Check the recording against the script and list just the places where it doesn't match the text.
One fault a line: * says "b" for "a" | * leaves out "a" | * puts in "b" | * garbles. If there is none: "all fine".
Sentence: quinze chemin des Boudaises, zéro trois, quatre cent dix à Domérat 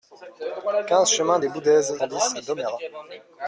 * leaves out "zéro trois quatre"